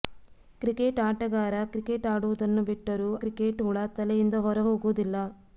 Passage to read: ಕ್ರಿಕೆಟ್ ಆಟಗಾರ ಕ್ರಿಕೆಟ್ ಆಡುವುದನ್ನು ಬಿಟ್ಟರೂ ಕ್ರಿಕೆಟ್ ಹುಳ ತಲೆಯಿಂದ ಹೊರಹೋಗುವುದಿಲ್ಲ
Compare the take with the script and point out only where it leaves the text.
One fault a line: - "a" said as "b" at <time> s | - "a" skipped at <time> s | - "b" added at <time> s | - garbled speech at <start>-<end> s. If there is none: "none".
none